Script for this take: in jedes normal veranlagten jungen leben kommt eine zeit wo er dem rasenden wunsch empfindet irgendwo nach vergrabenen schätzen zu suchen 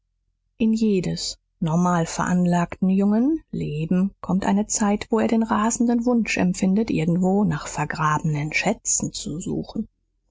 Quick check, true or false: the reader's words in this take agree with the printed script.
false